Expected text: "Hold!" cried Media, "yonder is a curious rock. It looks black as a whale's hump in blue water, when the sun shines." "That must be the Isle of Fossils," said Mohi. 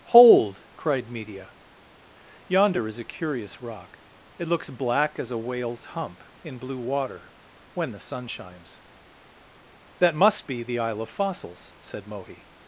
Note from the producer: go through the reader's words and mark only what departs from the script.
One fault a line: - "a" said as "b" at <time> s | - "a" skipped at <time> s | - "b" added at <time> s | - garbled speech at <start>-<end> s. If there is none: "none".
none